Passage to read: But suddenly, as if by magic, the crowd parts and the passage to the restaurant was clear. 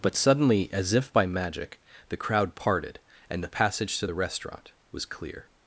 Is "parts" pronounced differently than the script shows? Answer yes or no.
yes